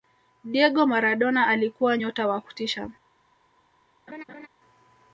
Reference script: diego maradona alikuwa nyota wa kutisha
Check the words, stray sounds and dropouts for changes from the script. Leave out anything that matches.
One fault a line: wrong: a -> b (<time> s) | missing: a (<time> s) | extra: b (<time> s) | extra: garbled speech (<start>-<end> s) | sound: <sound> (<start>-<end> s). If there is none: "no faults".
sound: laugh (4.1-4.5 s)